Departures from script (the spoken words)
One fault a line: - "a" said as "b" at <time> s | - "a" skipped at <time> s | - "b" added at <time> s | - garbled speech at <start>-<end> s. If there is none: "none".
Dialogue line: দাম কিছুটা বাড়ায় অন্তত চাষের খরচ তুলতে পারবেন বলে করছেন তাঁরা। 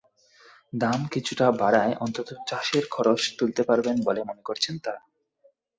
- "মনে" added at 4.2 s